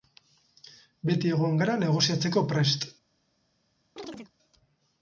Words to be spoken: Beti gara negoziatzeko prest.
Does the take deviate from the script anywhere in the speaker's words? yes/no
yes